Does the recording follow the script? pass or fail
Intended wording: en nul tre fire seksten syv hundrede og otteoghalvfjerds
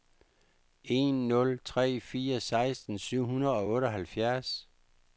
pass